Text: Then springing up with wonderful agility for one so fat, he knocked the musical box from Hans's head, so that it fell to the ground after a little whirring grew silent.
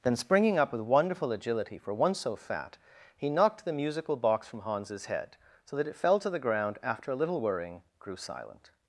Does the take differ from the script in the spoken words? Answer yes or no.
no